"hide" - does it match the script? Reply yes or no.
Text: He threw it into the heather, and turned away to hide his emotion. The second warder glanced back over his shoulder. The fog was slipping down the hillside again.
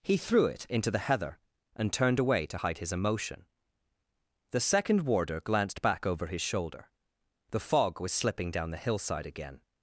yes